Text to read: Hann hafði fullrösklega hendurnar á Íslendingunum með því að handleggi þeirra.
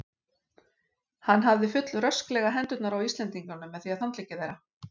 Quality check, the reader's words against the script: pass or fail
pass